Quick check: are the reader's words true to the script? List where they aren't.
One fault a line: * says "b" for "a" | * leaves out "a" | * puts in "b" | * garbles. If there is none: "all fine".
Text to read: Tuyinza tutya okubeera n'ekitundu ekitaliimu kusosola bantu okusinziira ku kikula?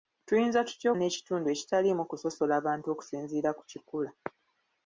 * leaves out "okubeera"